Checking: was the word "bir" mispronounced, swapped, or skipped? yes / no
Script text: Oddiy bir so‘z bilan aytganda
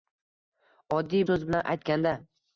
yes